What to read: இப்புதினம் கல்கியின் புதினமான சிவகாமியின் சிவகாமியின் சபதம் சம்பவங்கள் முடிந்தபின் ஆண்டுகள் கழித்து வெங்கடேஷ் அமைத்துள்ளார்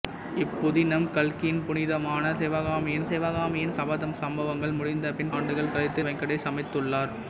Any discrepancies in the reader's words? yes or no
no